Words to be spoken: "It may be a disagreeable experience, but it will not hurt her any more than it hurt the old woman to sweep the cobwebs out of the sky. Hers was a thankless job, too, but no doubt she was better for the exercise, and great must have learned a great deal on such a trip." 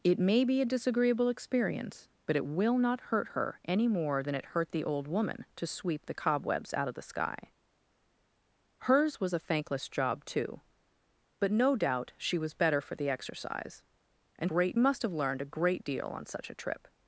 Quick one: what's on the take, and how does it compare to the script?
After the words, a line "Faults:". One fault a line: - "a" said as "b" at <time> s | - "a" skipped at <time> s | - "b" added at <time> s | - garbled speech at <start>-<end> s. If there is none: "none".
"It may be a disagreeable experience, but it will not hurt her any more than it hurt the old woman to sweep the cobwebs out of the sky. Hers was a thankless job, too, but no doubt she was better for the exercise, and great must have learned a great deal on such a trip."
Faults:
none